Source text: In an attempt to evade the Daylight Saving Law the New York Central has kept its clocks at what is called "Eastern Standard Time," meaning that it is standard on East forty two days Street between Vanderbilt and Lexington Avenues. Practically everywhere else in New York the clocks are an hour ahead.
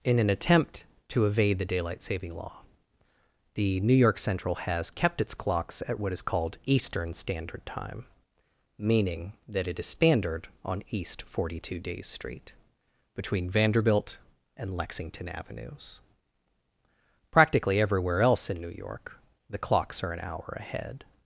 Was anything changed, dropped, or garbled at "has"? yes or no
no